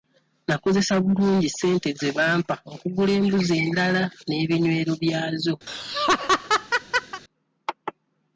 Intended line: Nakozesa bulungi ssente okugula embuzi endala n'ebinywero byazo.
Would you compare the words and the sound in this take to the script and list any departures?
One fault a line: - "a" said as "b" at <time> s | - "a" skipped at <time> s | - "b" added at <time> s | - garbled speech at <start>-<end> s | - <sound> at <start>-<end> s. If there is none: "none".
- "ze bampa" added at 2.0 s
- laugh at 5.7-7.2 s